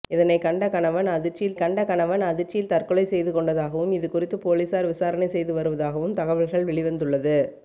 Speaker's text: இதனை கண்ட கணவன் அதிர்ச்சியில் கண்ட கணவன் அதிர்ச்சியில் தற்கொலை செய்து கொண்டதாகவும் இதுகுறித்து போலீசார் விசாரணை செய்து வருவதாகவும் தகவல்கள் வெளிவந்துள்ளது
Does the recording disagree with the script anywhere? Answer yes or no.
no